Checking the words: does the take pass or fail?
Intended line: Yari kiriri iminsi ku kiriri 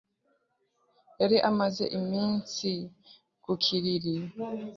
fail